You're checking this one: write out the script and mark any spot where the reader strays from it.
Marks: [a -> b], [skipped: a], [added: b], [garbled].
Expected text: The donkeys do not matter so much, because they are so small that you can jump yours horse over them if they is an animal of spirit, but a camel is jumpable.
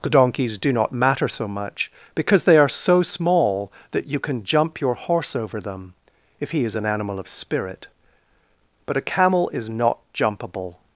The donkeys do not matter so much, because they are so small that you can jump [yours -> your] horse over them if [they -> he] is an animal of spirit, but a camel is [added: not] jumpable.